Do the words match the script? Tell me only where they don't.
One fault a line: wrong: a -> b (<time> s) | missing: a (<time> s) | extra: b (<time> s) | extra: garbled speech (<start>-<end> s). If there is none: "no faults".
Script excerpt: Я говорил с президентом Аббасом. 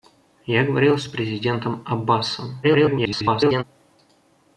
extra: garbled speech (2.6-3.6 s)